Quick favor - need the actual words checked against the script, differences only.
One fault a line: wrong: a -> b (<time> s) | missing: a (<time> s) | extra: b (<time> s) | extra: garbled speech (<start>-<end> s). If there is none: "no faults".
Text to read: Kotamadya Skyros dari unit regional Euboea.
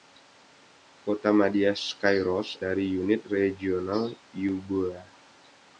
no faults